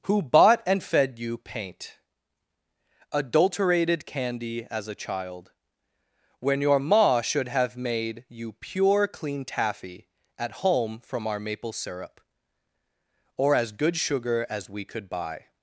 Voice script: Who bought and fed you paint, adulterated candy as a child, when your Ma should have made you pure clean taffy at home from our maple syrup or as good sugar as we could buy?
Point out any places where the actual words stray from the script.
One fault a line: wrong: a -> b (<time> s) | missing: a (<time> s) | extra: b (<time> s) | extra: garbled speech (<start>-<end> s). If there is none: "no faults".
no faults